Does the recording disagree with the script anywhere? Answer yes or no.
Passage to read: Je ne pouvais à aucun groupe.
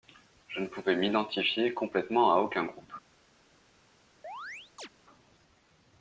yes